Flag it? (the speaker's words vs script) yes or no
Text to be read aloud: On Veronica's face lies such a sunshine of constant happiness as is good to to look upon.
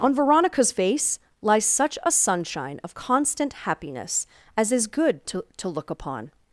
no